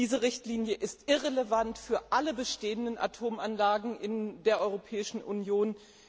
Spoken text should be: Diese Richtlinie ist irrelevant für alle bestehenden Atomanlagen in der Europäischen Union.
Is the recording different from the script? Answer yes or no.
no